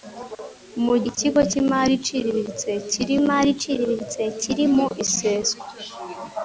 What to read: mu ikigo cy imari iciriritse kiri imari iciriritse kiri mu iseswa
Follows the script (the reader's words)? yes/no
yes